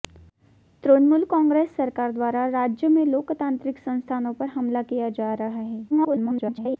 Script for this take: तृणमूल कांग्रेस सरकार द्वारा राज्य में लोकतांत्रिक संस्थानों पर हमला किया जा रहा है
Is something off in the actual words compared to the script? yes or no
yes